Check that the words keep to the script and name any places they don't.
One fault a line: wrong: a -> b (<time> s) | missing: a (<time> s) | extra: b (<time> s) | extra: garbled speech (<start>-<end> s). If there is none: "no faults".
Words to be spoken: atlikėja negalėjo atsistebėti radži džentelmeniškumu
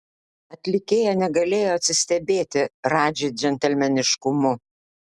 no faults